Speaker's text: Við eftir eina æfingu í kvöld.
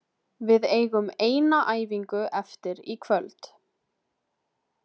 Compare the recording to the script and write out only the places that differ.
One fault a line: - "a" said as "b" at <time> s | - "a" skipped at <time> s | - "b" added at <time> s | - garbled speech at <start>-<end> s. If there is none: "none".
- "eftir" said as "eigum" at 0.8 s
- "eftir" added at 2.4 s